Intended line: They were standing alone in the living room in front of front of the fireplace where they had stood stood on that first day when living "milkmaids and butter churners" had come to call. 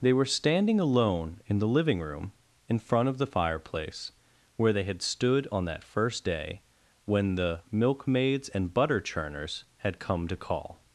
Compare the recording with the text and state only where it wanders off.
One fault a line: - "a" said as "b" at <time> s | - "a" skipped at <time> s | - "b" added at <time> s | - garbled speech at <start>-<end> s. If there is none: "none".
- "front of" skipped at 3.2 s
- "stood" skipped at 5.5 s
- "living" said as "the" at 7.4 s